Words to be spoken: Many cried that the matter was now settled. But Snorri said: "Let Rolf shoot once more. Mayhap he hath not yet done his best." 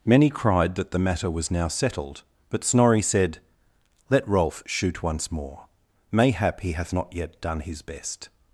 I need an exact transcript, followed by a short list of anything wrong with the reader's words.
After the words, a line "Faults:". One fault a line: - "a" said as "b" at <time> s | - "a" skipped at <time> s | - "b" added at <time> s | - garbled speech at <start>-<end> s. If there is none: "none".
Many cried that the matter was now settled. But Snorri said: "Let Rolf shoot once more. Mayhap he hath not yet done his best."
Faults:
none